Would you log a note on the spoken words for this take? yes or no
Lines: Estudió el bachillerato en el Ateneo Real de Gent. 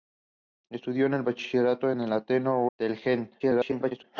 yes